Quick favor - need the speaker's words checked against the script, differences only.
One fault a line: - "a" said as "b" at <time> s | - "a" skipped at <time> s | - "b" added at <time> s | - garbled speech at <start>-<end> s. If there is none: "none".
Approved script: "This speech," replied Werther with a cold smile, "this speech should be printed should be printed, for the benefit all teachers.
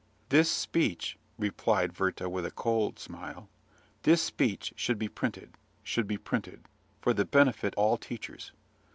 none